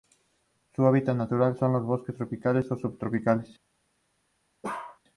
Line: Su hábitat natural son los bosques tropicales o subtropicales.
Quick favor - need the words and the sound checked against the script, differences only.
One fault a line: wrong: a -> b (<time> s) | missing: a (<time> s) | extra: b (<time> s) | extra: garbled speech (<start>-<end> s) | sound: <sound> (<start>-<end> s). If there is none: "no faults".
sound: bark (4.6-5.0 s)